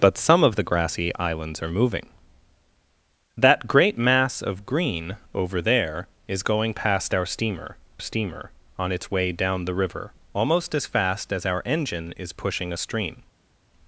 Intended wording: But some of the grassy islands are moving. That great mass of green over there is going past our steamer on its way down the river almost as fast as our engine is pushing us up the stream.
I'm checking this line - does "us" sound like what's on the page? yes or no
no